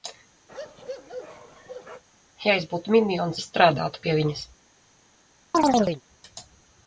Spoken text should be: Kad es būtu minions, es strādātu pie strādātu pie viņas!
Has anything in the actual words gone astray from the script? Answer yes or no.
yes